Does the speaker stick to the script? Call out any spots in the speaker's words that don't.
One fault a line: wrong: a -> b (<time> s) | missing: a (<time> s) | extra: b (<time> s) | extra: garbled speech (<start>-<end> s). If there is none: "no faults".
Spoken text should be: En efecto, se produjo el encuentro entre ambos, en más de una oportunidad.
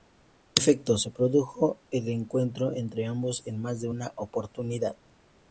no faults